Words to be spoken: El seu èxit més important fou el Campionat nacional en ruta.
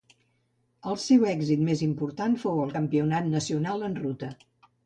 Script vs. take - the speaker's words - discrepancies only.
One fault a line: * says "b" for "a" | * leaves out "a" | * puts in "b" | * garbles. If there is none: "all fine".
all fine